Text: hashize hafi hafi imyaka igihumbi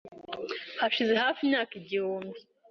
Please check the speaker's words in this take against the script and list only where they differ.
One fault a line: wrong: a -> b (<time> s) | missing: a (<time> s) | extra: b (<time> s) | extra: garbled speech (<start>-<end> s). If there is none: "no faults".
missing: hafi (1.4 s)